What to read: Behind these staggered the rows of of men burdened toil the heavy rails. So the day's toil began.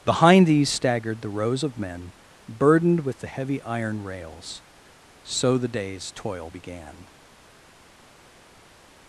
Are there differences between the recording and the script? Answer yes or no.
yes